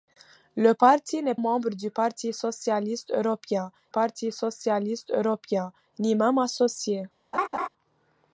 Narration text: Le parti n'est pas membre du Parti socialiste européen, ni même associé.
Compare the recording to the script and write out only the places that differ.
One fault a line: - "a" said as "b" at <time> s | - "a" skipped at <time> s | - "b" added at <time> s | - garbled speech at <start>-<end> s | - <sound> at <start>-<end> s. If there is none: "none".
- "pas" skipped at 1.4 s
- "Parti socialiste européen" added at 3.9 s
- laugh at 7.3-7.7 s